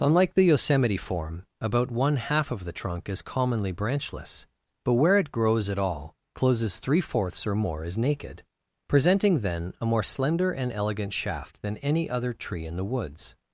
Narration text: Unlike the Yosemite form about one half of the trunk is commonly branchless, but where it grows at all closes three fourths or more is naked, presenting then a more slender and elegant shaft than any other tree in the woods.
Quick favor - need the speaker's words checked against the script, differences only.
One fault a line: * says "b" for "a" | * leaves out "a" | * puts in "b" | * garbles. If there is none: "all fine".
all fine